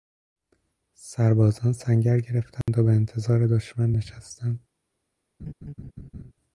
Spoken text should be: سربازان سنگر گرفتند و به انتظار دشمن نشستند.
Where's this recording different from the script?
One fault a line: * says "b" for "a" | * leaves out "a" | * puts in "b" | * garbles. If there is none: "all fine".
all fine